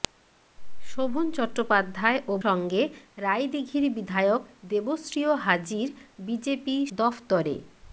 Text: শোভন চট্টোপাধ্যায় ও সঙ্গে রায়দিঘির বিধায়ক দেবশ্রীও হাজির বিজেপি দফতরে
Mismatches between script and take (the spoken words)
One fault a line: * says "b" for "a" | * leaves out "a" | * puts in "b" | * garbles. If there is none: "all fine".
all fine